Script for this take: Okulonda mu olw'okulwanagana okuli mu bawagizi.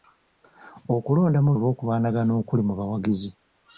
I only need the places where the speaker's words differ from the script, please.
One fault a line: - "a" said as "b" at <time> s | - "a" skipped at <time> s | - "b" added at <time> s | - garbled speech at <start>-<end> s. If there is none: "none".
none